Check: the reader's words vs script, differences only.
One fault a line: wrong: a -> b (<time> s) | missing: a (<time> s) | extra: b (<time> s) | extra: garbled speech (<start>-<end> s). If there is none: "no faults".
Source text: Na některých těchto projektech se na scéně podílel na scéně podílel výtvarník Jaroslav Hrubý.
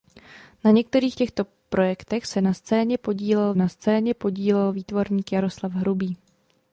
no faults